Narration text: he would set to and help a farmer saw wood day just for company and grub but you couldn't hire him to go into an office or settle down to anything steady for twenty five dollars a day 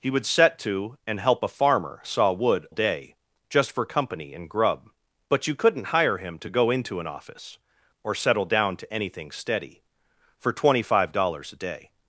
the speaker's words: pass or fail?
pass